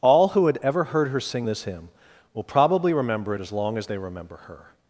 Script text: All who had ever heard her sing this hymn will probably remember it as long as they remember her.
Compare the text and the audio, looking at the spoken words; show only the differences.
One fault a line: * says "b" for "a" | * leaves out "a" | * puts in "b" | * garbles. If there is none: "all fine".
all fine